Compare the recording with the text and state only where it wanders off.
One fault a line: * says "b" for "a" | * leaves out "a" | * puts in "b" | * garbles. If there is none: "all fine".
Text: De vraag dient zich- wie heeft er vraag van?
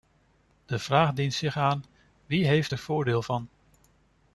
* puts in "aan"
* says "voordeel" for "vraag"